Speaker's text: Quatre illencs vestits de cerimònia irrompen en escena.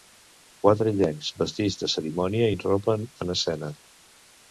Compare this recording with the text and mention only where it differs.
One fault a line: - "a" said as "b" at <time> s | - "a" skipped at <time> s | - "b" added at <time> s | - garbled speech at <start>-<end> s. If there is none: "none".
none